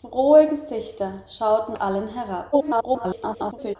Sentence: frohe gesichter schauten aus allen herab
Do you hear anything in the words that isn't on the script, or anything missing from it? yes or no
yes